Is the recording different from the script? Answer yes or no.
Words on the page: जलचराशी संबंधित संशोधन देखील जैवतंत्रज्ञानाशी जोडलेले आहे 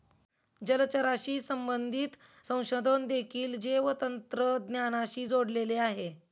no